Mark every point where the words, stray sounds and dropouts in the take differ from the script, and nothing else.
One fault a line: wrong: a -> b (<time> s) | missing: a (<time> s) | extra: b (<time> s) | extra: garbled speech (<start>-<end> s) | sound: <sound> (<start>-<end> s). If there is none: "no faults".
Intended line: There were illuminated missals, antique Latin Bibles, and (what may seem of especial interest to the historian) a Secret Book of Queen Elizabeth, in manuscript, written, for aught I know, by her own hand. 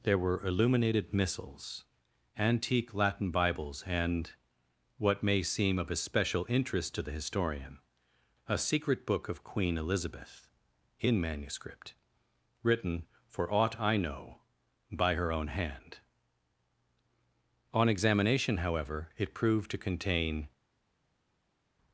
extra: On examination however it proved to contain (17.7 s)